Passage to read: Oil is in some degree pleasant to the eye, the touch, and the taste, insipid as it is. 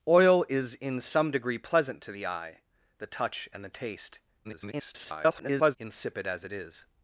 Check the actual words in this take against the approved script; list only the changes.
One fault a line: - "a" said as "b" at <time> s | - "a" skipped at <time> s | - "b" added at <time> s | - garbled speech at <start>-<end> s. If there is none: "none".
- garbled speech at 4.4-5.8 s